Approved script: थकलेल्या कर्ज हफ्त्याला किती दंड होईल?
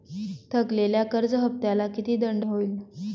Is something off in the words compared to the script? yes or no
no